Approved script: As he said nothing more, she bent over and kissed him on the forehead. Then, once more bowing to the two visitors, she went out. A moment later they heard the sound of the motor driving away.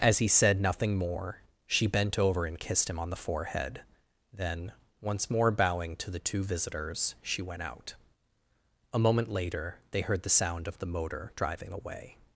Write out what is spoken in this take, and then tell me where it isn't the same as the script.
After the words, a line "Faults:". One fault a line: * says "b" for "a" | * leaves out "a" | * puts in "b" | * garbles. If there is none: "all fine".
As he said nothing more, she bent over and kissed him on the forehead. Then, once more bowing to the two visitors, she went out. A moment later they heard the sound of the motor driving away.
Faults:
all fine